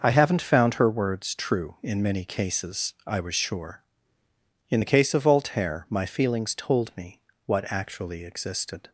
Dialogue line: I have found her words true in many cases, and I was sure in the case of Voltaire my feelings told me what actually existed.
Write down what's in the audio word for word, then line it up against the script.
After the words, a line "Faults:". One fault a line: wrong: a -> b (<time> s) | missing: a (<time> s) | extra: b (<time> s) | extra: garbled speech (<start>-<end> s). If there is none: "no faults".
I haven't found her words true in many cases, I was sure in the case of Voltaire my feelings told me what actually existed.
Faults:
wrong: have -> haven't (0.1 s)
missing: and (2.9 s)